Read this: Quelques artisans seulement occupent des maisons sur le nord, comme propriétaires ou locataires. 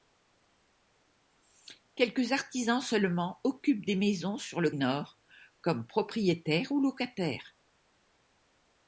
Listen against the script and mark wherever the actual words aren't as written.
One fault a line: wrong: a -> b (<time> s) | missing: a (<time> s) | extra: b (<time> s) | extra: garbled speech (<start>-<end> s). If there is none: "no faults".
no faults